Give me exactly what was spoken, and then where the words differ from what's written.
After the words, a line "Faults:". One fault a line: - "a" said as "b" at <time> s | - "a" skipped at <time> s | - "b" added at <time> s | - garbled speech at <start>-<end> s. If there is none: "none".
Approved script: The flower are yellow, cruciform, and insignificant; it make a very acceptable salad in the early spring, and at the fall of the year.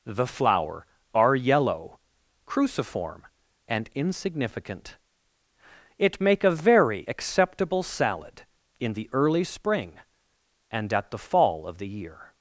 The flower are yellow, cruciform, and insignificant; it make a very acceptable salad in the early spring, and at the fall of the year.
Faults:
none